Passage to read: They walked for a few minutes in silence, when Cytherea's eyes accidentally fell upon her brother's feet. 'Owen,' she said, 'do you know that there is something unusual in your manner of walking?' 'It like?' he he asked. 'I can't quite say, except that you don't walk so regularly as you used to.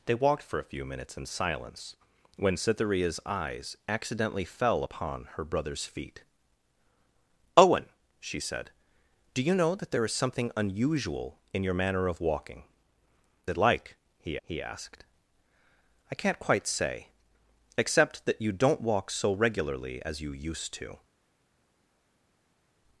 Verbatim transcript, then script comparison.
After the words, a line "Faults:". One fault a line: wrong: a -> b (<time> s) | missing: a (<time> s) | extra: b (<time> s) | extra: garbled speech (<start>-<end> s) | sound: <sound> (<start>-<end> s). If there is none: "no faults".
They walked for a few minutes in silence, when Cytherea's eyes accidentally fell upon her brother's feet. 'Owen,' she said, 'do you know that there is something unusual in your manner of walking?' 'It like?' he he asked. 'I can't quite say, except that you don't walk so regularly as you used to.
Faults:
no faults